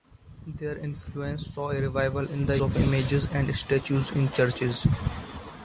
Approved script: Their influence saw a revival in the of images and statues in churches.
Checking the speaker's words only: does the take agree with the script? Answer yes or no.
yes